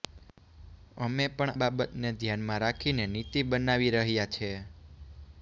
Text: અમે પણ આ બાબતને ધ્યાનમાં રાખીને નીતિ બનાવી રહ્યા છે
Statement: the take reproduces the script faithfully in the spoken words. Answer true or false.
false